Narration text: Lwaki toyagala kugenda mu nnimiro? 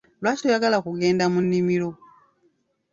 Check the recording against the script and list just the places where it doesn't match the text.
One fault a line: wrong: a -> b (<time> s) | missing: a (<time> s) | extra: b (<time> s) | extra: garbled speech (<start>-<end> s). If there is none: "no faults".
no faults